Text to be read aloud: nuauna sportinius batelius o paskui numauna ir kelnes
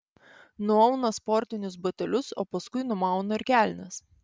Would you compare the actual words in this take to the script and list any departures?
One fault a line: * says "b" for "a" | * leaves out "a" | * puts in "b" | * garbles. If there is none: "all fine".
all fine